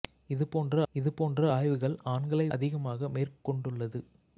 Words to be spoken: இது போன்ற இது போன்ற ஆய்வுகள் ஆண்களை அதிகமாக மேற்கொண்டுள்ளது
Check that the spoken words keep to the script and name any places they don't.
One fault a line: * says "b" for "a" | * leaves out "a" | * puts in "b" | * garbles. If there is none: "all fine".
all fine